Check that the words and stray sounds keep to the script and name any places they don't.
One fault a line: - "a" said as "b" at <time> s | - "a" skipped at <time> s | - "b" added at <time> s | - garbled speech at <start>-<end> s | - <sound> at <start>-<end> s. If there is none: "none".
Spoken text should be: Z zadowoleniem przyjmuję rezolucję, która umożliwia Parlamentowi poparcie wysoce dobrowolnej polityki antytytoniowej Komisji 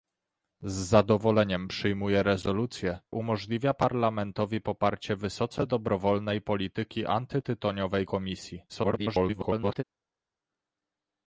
- "która" skipped at 3.0 s
- garbled speech at 8.7-9.8 s